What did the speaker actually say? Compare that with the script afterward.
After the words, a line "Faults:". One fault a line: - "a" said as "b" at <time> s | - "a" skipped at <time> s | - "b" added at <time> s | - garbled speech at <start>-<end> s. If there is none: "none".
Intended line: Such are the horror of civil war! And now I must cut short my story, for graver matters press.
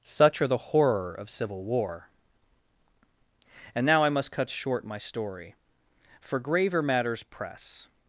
Such are the horror of civil war! And now I must cut short my story, for graver matters press.
Faults:
none